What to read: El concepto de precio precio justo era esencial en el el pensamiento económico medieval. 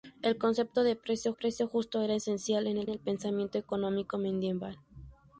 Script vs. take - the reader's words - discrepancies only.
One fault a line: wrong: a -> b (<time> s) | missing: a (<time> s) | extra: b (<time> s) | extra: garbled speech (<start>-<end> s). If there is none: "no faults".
no faults